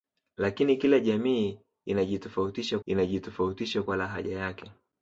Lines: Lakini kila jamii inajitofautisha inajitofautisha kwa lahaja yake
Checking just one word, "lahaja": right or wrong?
right